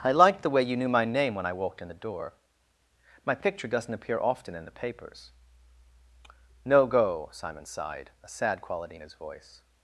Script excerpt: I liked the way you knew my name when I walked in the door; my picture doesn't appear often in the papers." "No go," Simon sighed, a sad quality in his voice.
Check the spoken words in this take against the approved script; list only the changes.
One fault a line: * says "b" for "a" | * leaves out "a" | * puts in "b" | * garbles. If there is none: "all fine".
all fine